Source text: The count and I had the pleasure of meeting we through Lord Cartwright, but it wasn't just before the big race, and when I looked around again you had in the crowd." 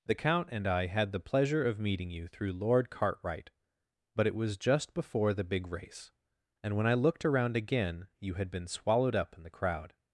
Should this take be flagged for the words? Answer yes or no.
yes